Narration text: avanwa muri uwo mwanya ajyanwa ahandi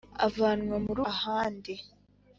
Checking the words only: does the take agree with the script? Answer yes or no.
no